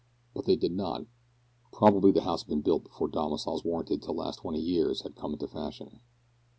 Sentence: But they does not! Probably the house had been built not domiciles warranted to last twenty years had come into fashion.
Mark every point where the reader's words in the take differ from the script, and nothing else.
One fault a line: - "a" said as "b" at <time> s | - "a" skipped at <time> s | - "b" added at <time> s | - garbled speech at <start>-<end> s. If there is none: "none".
- "does" said as "did" at 0.6 s
- "not" said as "before" at 2.9 s